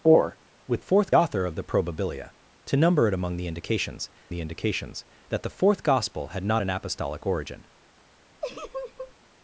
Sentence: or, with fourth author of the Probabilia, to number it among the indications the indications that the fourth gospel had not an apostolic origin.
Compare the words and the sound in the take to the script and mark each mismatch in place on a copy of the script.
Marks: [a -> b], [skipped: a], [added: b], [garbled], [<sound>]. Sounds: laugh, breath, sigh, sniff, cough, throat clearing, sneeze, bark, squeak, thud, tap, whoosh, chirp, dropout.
or, with fourth author of the Probabilia, to number it among the indications the indications that the fourth gospel had not an apostolic origin. [laugh]